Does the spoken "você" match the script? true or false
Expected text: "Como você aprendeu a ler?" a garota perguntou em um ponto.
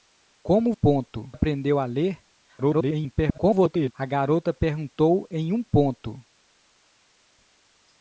false